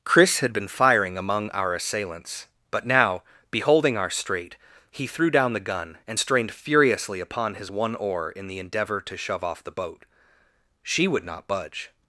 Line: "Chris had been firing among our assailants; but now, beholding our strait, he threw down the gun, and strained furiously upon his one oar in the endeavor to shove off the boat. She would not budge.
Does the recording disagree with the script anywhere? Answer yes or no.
no